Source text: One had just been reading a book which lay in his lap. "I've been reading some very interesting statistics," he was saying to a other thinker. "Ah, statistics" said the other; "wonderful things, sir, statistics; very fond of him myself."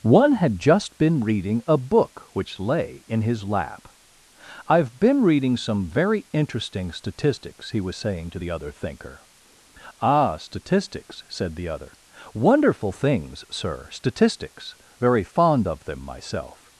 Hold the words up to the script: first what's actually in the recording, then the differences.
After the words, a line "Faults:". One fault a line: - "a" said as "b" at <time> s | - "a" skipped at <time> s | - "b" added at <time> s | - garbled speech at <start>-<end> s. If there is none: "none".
One had just been reading a book which lay in his lap. "I've been reading some very interesting statistics," he was saying to the other thinker. "Ah, statistics" said the other; "wonderful things, sir, statistics; very fond of them myself."
Faults:
- "a" said as "the" at 8.4 s
- "him" said as "them" at 15.9 s